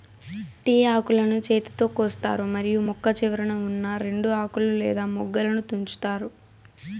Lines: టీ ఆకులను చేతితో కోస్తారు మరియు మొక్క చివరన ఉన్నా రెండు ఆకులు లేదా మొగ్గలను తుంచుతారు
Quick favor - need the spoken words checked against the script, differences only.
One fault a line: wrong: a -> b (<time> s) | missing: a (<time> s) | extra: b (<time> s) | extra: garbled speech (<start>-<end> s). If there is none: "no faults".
no faults